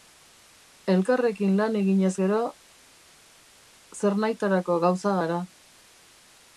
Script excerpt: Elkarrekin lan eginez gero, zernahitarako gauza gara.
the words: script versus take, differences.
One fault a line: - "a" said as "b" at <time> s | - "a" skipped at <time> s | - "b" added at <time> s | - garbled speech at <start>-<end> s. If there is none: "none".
none